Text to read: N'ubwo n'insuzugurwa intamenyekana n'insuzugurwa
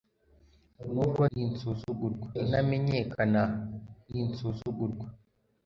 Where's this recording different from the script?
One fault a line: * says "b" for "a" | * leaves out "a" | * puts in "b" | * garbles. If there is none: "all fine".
all fine